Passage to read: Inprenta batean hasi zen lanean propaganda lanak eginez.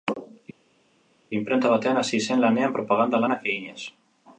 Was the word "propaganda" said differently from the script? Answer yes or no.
no